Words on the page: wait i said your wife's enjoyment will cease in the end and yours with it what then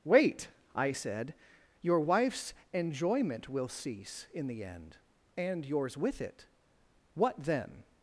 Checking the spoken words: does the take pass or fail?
pass